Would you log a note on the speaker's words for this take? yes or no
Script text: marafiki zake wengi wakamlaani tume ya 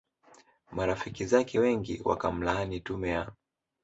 no